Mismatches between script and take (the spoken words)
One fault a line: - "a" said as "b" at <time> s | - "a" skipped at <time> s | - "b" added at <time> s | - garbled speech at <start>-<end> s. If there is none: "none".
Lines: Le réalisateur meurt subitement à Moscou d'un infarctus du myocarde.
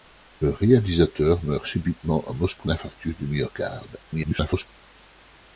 - "d'un" skipped at 2.7 s
- garbled speech at 4.1-4.7 s